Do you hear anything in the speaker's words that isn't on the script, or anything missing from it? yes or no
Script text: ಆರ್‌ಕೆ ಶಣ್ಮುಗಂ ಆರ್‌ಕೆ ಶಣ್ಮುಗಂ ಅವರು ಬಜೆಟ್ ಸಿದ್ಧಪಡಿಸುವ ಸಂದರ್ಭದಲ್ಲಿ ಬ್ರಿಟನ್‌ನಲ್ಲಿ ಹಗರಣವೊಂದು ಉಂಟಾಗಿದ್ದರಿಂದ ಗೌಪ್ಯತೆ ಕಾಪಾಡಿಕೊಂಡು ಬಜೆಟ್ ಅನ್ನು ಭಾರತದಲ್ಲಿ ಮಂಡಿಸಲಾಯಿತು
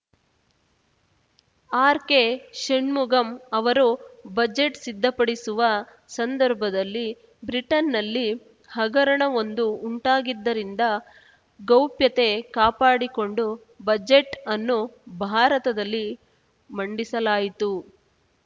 yes